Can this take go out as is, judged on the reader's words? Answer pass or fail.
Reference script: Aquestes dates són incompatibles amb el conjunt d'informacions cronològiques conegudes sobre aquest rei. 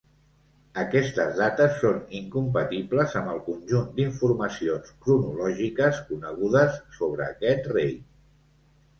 pass